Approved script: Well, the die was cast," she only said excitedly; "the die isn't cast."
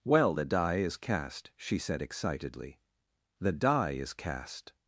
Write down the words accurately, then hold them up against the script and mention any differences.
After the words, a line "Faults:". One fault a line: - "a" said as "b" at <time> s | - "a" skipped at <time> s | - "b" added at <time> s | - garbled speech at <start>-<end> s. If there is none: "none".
Well, the die is cast," she said excitedly; "the die is cast."
Faults:
- "was" said as "is" at 0.8 s
- "only" skipped at 1.8 s
- "isn't" said as "is" at 3.9 s